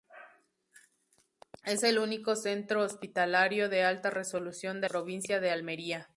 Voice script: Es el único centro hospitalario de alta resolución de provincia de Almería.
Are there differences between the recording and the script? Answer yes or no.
no